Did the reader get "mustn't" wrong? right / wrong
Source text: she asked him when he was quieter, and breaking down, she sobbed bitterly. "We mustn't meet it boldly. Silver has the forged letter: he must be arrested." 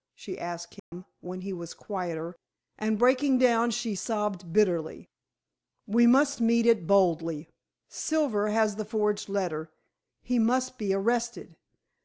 wrong